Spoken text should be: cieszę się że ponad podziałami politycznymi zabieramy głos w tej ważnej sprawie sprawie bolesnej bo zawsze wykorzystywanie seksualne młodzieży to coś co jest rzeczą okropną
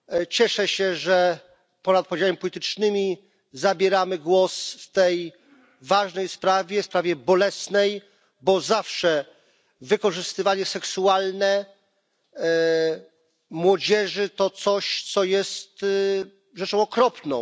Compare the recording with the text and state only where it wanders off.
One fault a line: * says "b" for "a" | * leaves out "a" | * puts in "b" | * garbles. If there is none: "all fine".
all fine